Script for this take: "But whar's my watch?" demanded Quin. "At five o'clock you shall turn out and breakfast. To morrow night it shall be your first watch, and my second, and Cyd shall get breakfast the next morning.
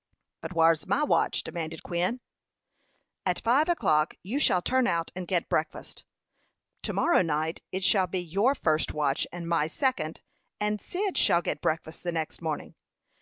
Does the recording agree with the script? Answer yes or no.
no